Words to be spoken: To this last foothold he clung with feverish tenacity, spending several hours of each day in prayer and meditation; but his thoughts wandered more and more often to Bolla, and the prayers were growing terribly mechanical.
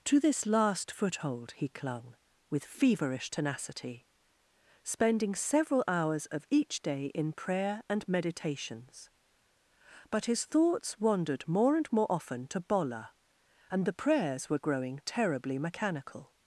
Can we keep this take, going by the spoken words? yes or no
no